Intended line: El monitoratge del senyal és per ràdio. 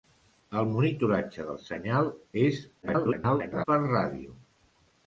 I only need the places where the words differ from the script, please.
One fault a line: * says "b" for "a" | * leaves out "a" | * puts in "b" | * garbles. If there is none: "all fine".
* garbles